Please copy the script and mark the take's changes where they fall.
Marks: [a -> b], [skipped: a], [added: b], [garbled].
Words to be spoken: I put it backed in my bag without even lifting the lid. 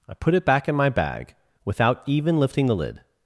I put it [backed -> back] in my bag without even lifting the lid.